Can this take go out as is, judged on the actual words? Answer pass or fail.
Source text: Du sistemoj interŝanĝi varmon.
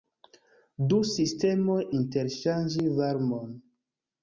pass